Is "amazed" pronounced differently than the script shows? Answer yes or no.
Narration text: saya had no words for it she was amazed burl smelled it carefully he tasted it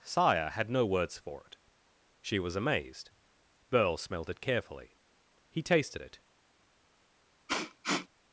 no